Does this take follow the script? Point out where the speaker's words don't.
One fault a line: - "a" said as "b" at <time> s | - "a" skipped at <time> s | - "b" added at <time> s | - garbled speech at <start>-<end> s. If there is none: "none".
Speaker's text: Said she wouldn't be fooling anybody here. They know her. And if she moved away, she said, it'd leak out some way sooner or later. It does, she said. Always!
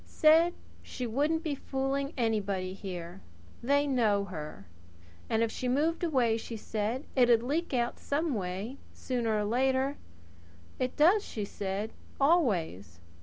none